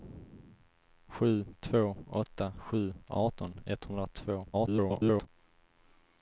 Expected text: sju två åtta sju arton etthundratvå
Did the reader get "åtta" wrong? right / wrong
right